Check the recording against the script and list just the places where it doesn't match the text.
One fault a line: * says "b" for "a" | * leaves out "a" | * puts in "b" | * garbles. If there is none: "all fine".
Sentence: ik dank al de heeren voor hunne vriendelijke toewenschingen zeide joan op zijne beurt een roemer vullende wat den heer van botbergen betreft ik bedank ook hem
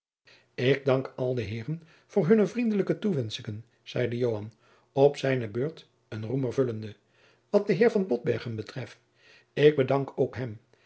all fine